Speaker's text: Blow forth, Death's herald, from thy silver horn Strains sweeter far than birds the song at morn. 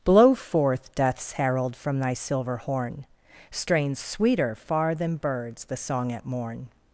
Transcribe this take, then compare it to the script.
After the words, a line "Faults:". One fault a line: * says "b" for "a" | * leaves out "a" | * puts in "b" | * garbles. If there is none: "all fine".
Blow forth, Death's herald, from thy silver horn Strains sweeter far than birds the song at morn.
Faults:
all fine